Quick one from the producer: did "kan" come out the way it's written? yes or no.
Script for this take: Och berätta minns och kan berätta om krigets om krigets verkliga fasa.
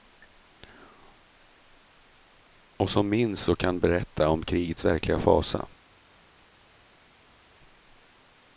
yes